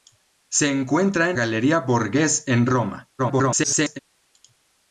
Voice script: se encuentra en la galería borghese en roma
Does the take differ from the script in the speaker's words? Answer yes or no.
yes